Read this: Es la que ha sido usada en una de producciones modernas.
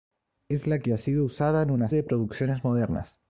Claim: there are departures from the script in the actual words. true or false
false